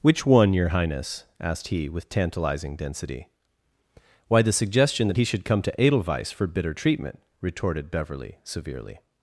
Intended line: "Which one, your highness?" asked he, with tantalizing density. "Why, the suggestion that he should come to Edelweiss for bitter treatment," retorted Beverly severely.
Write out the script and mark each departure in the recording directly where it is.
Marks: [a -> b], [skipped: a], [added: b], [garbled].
"Which one, your highness?" asked he, with tantalizing density. "Why, the suggestion that he should come to Edelweiss for bitter treatment," retorted Beverly severely.